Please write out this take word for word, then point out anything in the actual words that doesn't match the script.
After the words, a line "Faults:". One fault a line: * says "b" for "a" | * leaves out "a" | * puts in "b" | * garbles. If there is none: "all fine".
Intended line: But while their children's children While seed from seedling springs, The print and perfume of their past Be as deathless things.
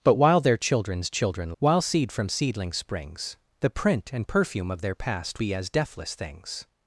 But while their children's children While seed from seedling springs, The print and perfume of their past Be as deathless things.
Faults:
all fine